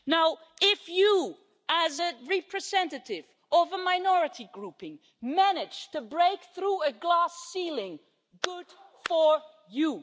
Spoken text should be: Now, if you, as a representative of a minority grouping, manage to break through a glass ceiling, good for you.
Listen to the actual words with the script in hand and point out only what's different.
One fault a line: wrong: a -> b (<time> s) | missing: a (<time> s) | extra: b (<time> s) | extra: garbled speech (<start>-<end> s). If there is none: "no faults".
no faults